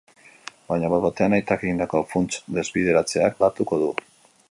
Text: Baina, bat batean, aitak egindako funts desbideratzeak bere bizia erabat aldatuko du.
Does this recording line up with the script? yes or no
no